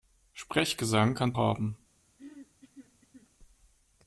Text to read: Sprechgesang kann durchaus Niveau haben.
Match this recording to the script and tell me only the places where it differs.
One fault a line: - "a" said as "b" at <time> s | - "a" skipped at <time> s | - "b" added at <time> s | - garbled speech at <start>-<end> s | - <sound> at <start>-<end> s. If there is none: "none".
- "durchaus Niveau" skipped at 1.3 s
- throat clearing at 2.2-3.3 s